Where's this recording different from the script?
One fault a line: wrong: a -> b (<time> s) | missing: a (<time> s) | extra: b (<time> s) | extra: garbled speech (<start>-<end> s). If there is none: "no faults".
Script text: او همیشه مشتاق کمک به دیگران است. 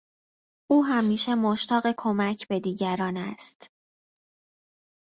no faults